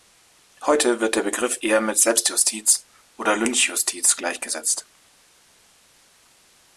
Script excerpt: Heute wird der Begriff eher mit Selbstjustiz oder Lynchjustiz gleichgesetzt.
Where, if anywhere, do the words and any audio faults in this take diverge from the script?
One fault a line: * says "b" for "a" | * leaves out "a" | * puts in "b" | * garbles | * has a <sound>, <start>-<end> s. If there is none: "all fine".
all fine